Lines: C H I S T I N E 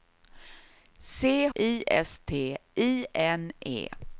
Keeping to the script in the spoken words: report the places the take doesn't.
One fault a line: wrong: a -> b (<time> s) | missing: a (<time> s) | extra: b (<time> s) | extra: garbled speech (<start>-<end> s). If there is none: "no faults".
no faults